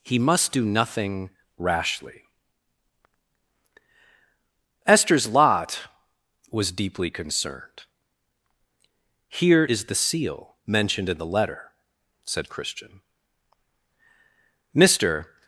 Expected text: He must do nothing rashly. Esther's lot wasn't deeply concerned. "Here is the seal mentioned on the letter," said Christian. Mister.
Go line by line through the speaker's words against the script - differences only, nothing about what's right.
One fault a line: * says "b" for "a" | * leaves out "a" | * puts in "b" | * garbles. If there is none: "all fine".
* says "was" for "wasn't"
* says "in" for "on"